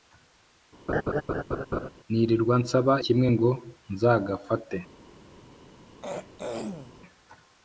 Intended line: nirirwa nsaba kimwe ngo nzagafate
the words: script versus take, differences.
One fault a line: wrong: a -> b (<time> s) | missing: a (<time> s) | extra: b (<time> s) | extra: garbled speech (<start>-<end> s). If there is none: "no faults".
no faults